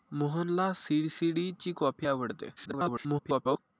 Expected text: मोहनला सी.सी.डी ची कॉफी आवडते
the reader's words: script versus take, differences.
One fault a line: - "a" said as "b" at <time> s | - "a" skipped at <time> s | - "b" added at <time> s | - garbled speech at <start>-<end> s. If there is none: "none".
- garbled speech at 2.6-3.6 s